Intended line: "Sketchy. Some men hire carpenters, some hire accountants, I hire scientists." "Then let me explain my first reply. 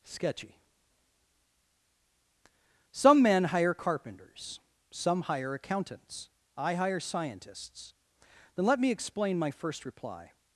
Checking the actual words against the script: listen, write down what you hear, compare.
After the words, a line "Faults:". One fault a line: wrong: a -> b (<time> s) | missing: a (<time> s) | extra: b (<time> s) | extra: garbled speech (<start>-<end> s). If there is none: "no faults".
"Sketchy. Some men hire carpenters, some hire accountants, I hire scientists." "Then let me explain my first reply.
Faults:
no faults